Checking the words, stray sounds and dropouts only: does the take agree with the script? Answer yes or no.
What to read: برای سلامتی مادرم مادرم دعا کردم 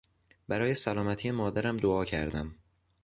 no